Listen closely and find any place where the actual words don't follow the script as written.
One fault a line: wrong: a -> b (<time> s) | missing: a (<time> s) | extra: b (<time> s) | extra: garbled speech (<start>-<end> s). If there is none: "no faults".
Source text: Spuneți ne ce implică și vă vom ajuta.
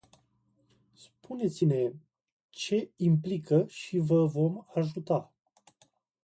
no faults